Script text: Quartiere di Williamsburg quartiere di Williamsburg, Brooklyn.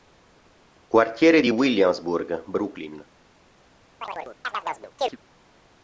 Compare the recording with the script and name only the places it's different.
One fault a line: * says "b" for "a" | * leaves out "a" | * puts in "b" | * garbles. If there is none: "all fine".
* leaves out "quartiere di Williamsburg"